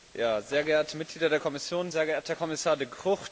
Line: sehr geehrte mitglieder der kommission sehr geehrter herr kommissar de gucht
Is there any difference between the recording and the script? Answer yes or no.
no